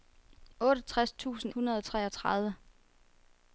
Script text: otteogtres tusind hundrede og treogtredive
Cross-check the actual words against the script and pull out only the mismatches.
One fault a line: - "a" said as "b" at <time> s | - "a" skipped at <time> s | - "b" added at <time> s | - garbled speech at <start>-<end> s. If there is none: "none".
none